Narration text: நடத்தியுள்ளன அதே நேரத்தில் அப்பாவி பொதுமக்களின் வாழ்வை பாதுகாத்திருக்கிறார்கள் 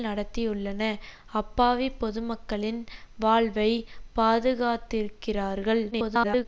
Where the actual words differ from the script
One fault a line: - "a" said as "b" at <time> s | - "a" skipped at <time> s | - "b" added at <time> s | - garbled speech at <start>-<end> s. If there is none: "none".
- "அதே நேரத்தில்" skipped at 0.8 s
- garbled speech at 5.9-6.5 s